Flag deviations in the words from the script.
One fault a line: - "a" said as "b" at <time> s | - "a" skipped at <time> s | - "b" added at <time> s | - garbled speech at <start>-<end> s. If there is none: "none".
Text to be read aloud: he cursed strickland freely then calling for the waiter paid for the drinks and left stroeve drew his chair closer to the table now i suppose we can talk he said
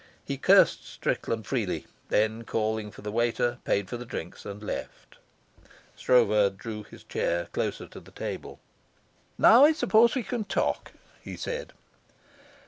none